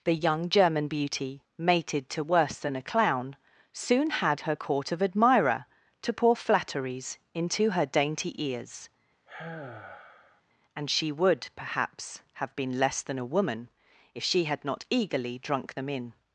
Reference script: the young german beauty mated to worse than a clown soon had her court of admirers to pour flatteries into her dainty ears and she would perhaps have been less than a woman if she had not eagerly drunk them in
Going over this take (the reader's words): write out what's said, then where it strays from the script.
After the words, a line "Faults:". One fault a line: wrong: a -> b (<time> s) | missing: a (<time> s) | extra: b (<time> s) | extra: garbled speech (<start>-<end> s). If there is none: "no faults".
the young german beauty mated to worse than a clown soon had her court of admirer to pour flatteries into her dainty ears and she would perhaps have been less than a woman if she had not eagerly drunk them in
Faults:
wrong: admirers -> admirer (5.0 s)